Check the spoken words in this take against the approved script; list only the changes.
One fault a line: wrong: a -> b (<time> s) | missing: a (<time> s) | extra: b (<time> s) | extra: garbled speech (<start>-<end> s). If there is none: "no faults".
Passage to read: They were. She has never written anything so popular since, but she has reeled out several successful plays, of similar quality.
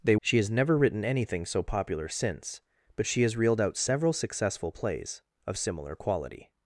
missing: were (0.1 s)